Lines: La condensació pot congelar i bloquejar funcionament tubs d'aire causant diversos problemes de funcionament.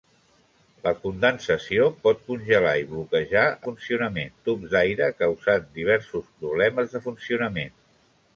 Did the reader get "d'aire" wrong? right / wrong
right